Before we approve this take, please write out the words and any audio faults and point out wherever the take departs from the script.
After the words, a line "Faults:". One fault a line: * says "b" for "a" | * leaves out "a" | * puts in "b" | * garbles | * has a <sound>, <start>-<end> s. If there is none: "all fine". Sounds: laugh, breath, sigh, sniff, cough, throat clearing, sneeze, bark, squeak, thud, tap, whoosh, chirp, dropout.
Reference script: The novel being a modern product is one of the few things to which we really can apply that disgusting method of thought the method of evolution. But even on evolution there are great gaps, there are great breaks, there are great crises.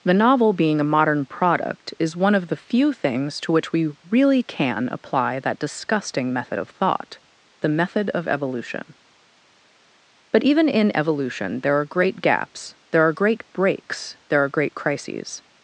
The novel being a modern product is one of the few things to which we really can apply that disgusting method of thought the method of evolution. But even in evolution there are great gaps, there are great breaks, there are great crises.
Faults:
* says "in" for "on"